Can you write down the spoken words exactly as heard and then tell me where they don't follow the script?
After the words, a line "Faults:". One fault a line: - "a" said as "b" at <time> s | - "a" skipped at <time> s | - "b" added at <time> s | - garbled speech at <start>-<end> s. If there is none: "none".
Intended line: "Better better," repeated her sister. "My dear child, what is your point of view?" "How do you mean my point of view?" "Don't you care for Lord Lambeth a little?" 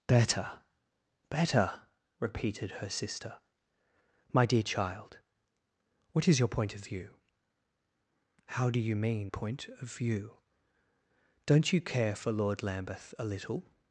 "Better better," repeated her sister. "My dear child, what is your point of view?" "How do you mean point of view?" "Don't you care for Lord Lambeth a little?"
Faults:
- "my" skipped at 9.3 s